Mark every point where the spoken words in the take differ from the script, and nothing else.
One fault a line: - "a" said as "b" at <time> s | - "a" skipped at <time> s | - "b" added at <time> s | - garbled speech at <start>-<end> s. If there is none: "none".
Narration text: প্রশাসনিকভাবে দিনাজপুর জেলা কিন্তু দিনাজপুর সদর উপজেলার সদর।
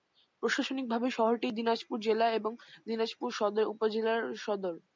- "শহরটি" added at 1.2 s
- "কিন্তু" said as "এবং" at 2.4 s